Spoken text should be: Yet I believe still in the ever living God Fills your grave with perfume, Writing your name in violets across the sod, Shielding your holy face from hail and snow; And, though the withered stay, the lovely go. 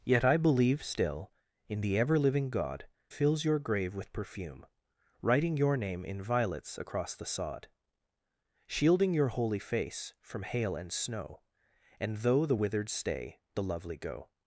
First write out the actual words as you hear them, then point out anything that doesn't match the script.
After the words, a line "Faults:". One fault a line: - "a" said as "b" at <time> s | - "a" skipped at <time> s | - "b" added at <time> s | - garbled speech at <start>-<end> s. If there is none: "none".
Yet I believe still in the ever living God Fills your grave with perfume, Writing your name in violets across the sod, Shielding your holy face from hail and snow; And, though the withered stay, the lovely go.
Faults:
none